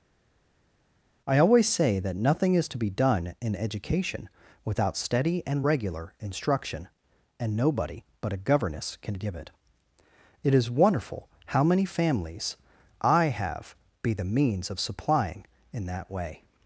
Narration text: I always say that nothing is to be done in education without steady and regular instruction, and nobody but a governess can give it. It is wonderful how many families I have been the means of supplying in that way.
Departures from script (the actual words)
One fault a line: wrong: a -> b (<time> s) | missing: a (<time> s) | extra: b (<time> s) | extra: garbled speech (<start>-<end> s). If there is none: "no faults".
wrong: been -> be (14.0 s)